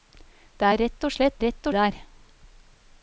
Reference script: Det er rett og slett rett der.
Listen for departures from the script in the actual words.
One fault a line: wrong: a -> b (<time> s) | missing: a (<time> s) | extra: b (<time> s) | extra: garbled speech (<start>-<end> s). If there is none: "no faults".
no faults